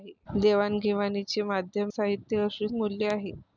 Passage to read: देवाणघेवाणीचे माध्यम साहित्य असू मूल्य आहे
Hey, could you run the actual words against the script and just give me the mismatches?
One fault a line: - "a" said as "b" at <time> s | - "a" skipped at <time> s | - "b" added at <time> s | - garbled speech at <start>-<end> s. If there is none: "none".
none